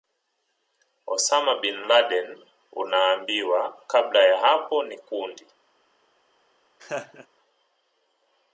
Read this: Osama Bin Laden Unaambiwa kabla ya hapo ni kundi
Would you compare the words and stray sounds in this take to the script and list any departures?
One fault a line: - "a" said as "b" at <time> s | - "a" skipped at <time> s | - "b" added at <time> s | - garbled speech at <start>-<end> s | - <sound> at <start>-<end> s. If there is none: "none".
- laugh at 6.8-7.3 s